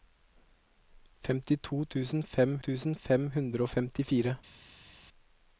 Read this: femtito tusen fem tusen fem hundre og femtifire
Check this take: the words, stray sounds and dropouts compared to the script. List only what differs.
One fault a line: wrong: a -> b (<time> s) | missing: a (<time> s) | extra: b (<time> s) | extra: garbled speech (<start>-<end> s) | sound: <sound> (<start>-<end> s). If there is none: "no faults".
no faults